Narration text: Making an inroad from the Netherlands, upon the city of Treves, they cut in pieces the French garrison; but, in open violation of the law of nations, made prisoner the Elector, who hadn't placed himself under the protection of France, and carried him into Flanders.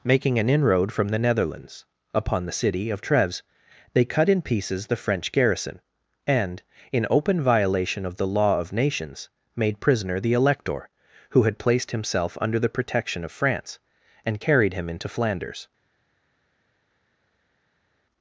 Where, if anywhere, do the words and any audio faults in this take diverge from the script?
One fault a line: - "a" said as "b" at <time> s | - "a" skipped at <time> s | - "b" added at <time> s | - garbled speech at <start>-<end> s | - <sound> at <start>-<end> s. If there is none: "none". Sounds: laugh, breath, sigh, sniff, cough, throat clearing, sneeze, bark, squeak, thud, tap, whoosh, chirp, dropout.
- "but" said as "and" at 6.2 s
- "hadn't" said as "had" at 11.4 s